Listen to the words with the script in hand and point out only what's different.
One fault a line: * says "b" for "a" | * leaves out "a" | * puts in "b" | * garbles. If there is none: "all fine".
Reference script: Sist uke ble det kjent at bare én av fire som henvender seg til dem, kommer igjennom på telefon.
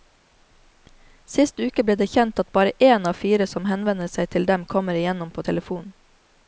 all fine